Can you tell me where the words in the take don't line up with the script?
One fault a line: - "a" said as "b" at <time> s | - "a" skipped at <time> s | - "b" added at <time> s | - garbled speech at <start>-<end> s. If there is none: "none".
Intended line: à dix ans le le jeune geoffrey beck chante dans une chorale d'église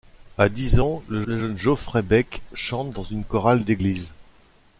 none